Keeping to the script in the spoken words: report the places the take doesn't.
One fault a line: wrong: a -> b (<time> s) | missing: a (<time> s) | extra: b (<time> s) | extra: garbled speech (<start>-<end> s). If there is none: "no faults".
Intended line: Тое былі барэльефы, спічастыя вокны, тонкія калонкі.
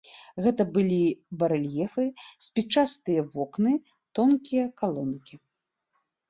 wrong: Тое -> Гэта (0.4 s)